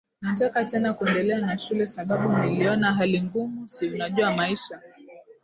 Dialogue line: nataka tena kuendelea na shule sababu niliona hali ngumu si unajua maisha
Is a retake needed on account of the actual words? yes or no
no